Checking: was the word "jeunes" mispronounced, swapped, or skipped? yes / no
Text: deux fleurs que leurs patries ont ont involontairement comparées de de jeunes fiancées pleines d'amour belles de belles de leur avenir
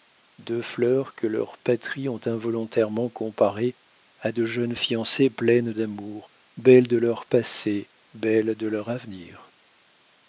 no